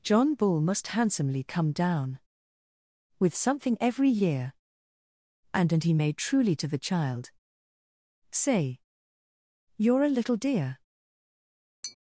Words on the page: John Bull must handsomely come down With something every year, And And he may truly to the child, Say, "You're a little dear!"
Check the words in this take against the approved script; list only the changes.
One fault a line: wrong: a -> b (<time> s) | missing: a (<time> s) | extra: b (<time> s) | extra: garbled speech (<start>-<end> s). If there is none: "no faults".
no faults